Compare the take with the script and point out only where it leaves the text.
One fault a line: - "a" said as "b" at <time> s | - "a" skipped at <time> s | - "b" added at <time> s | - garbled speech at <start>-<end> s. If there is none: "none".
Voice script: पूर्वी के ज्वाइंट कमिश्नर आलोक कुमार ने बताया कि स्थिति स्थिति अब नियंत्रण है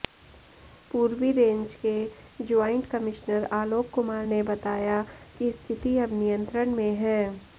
- "रेंज" added at 1.3 s
- "स्थिति" skipped at 6.0 s
- "में" added at 6.8 s